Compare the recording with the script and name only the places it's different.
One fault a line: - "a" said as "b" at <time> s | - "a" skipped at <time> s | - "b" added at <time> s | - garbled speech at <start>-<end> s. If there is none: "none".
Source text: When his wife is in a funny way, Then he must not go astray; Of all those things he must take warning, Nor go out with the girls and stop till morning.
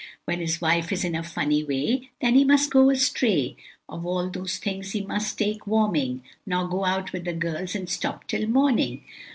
- "not" skipped at 2.7 s